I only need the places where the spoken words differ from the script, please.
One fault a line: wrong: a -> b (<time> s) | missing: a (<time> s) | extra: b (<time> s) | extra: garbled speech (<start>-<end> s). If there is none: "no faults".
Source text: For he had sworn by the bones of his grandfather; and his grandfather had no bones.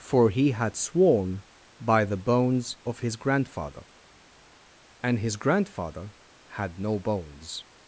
no faults